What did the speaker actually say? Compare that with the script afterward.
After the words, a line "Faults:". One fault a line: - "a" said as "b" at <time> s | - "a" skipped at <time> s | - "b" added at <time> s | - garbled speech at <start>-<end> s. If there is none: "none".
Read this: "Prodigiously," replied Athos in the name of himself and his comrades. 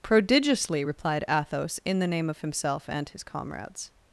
"Prodigiously," replied Athos in the name of himself and his comrades.
Faults:
none